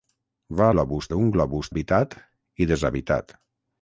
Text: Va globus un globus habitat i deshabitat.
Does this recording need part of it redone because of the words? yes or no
no